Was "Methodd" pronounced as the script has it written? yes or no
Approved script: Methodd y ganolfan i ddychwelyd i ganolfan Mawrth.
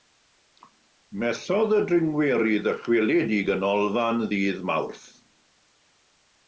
yes